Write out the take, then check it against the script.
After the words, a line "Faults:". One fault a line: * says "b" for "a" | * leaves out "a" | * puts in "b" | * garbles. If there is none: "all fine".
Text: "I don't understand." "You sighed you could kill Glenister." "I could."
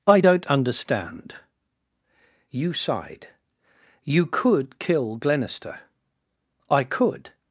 "I don't understand." "You sighed you could kill Glenister." "I could."
Faults:
all fine